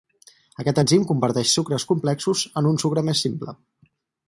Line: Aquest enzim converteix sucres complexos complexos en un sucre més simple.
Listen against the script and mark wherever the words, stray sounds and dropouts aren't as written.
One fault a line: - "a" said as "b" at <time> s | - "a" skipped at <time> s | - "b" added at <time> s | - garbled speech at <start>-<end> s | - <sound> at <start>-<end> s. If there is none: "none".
- "complexos" skipped at 2.4 s